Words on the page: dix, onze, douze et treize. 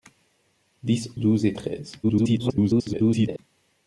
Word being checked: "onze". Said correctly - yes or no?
no